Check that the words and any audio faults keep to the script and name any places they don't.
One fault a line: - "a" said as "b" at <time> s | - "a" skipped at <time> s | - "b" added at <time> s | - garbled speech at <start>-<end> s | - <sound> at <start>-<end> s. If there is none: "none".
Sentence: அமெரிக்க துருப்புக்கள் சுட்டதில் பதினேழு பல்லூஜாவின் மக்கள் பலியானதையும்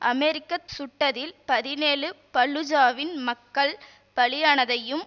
- "துருப்புக்கள்" skipped at 0.6 s